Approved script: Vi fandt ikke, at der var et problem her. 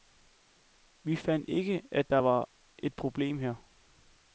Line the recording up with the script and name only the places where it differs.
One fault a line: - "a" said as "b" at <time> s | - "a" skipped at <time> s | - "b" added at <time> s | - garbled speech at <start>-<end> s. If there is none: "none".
none